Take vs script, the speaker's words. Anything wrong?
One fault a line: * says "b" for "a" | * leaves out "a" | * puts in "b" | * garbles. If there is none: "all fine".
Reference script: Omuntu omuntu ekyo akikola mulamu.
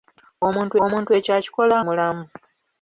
all fine